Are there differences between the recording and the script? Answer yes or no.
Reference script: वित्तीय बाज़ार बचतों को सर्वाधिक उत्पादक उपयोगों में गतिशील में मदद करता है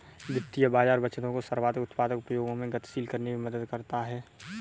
yes